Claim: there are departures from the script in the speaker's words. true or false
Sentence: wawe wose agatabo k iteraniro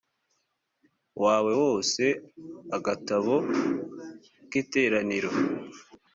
false